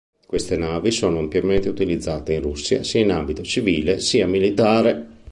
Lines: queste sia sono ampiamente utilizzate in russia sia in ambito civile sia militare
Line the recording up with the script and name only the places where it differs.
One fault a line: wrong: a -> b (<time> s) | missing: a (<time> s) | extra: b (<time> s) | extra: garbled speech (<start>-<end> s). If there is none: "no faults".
wrong: sia -> navi (0.6 s)